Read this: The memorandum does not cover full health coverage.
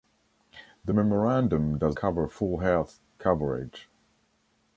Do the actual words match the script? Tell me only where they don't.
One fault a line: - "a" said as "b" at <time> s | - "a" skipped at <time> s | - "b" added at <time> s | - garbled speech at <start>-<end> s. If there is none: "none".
- "not" skipped at 2.0 s